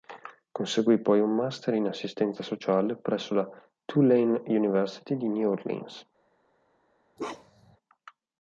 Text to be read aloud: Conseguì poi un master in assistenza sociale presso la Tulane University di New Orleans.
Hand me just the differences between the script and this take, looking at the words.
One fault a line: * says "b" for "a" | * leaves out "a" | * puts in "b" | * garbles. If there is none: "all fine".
all fine